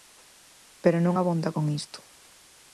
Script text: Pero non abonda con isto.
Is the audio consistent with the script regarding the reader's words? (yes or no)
yes